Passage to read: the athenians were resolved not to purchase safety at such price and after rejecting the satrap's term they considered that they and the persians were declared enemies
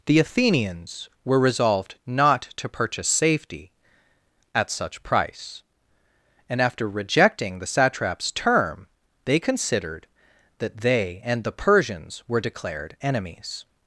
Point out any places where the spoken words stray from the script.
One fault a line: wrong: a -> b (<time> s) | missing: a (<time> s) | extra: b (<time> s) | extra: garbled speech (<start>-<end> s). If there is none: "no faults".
no faults